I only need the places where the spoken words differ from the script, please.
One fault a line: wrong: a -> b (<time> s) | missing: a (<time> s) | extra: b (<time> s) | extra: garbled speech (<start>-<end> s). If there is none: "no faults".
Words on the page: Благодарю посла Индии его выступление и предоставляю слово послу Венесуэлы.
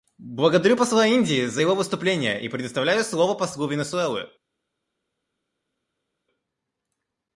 extra: за (1.5 s)